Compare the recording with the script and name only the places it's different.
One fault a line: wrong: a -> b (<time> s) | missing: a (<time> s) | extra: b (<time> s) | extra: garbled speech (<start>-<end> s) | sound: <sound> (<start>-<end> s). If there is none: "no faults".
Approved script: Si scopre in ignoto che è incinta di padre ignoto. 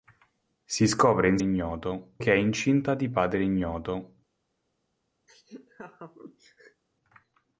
sound: laugh (5.3-6.8 s)